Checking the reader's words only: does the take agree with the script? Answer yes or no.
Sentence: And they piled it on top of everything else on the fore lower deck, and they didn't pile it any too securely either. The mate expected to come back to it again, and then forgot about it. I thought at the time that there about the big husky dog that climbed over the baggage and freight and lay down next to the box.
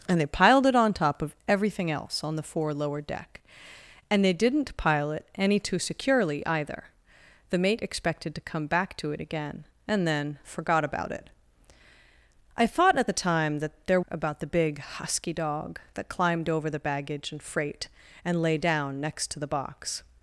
yes